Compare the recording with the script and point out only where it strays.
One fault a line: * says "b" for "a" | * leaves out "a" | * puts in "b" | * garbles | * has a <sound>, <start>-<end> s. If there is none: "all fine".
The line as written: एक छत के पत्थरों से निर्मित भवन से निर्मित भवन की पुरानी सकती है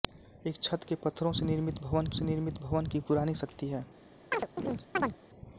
* has a chirp, 4.3-5.2 s